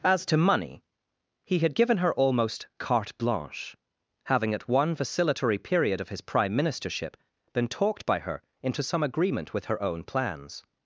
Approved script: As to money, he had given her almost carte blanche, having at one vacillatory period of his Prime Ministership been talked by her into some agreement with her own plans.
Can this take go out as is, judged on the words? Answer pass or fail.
pass